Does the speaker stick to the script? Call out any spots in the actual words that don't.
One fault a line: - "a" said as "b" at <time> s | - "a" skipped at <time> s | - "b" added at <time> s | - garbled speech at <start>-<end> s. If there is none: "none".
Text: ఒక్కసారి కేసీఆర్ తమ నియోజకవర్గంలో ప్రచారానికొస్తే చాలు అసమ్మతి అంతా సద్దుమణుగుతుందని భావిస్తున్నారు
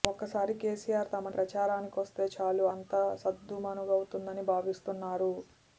- "నియోజకవర్గంలో" skipped at 1.3 s
- "అసమ్మతి" skipped at 2.7 s